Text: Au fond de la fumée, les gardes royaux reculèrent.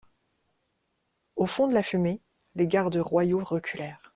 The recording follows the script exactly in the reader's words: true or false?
true